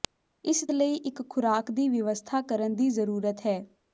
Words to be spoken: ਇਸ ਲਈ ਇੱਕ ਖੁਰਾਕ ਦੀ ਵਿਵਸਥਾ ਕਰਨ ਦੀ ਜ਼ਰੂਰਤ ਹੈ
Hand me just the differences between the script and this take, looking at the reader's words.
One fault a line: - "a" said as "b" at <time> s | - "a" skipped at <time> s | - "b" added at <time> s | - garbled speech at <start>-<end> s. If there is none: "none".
none